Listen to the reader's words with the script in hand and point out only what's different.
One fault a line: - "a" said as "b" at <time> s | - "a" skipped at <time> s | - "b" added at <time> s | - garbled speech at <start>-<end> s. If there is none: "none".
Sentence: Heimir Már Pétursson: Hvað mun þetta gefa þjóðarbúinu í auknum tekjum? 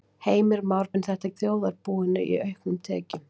- "Pétursson Hvað" skipped at 0.9 s
- "gefa" skipped at 1.3 s